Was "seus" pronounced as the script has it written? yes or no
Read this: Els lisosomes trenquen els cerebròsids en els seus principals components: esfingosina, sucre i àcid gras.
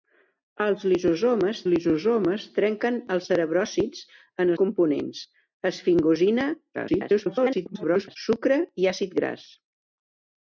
no